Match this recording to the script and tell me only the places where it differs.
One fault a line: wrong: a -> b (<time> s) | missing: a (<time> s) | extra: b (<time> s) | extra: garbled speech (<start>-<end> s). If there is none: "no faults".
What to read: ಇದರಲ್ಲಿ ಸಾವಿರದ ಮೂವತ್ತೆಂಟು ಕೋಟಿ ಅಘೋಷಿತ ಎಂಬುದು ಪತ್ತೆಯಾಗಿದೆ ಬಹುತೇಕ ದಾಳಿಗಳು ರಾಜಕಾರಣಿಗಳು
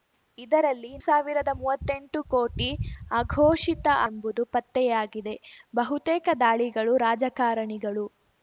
no faults